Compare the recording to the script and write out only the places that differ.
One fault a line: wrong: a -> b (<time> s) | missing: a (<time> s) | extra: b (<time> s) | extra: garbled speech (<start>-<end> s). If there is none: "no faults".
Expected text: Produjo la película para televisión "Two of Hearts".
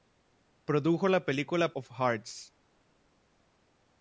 missing: para televisión Two (1.7 s)